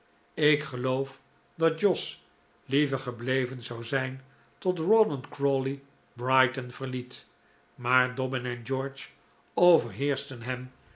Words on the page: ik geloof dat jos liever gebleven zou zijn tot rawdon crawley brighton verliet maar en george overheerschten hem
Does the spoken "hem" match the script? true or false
true